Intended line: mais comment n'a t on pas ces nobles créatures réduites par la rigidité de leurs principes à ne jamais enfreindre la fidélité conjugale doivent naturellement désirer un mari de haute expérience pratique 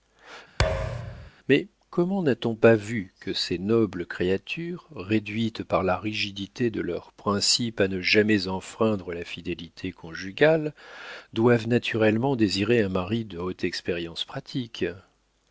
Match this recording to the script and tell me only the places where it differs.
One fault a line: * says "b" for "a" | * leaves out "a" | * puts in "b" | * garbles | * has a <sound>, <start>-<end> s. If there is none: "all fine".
* has a thud, 0.6-1.3 s
* puts in "vu que"